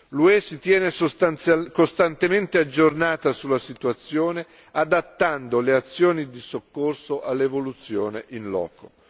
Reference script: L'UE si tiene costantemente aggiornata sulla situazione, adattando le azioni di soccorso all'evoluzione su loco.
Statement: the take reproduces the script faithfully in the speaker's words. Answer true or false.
false